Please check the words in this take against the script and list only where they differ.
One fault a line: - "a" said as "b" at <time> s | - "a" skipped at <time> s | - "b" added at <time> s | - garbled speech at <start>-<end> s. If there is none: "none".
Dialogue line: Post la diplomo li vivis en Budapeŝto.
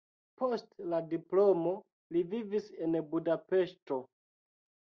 none